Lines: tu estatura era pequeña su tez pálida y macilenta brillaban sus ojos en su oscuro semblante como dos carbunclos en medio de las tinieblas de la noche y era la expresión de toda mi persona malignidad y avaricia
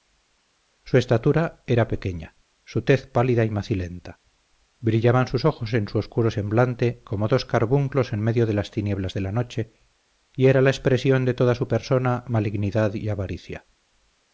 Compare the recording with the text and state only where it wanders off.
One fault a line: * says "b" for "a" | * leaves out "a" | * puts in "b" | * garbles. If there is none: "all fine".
* says "su" for "tu"
* says "su" for "mi"